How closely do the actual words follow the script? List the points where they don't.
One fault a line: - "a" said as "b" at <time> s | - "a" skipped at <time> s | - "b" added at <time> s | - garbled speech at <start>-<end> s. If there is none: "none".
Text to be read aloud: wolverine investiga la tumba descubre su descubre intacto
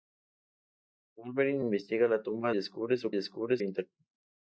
none